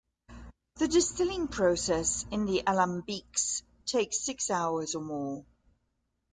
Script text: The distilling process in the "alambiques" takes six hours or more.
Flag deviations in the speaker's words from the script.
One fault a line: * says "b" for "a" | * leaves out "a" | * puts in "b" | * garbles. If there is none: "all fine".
all fine